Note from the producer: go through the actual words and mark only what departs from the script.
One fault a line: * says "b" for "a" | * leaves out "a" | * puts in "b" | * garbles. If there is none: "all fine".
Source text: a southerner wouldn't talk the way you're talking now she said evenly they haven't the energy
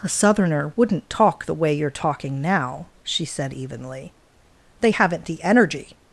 all fine